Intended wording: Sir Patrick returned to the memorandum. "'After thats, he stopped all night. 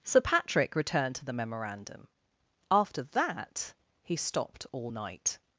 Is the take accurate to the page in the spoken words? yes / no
no